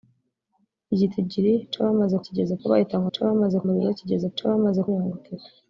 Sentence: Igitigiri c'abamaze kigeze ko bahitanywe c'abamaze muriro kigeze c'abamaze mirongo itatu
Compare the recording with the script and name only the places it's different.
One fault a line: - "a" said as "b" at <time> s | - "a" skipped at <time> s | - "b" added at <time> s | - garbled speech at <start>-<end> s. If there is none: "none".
none